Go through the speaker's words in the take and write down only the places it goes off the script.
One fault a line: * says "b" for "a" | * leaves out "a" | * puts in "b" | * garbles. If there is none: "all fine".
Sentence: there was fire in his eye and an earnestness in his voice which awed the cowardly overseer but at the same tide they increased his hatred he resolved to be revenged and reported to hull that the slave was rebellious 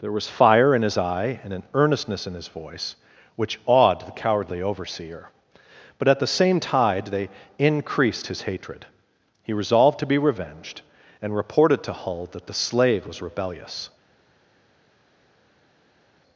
all fine